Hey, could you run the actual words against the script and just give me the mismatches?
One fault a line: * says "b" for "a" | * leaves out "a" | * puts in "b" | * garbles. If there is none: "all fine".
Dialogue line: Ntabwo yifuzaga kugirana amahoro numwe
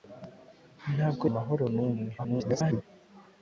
* leaves out "yifuzaga kugirana"
* garbles